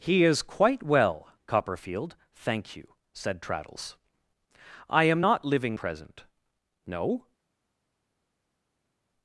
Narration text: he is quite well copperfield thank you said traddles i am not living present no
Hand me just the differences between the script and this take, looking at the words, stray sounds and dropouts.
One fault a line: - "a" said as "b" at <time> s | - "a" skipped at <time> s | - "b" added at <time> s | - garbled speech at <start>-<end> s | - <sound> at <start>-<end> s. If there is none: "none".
none